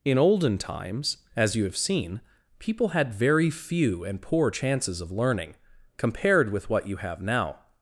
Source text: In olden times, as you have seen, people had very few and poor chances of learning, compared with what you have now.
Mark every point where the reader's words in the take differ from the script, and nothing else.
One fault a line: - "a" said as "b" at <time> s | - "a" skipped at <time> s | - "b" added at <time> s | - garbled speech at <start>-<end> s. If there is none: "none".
none